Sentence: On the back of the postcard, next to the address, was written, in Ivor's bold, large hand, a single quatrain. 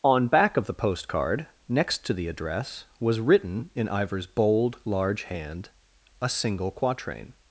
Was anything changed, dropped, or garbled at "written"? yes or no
no